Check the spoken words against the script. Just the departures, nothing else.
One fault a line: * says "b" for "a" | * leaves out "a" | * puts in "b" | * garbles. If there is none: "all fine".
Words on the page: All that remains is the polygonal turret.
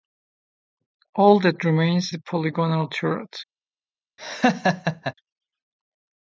* leaves out "is"